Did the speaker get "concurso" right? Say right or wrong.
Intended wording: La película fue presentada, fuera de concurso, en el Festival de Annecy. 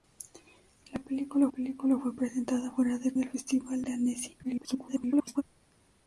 wrong